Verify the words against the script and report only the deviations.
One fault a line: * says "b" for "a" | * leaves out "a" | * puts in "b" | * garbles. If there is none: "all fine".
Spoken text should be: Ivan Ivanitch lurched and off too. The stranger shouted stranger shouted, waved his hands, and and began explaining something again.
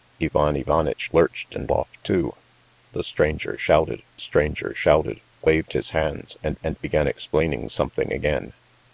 all fine